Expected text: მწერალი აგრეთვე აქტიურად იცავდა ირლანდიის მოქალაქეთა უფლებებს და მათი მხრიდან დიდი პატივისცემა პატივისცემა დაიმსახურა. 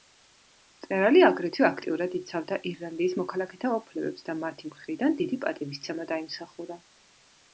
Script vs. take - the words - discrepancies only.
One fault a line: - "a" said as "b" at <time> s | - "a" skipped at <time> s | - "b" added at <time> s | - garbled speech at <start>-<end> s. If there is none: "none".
- "პატივისცემა" skipped at 6.1 s